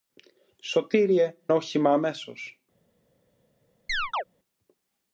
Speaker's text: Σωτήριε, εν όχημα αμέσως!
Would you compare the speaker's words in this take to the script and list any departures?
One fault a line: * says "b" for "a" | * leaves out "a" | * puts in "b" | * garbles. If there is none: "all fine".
* leaves out "εν"